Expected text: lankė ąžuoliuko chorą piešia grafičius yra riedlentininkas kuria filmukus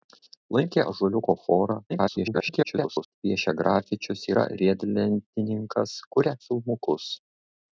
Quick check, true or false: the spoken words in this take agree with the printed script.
false